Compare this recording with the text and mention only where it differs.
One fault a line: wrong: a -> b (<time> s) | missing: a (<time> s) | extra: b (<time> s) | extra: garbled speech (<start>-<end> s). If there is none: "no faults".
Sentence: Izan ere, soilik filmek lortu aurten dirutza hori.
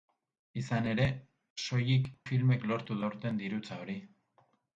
no faults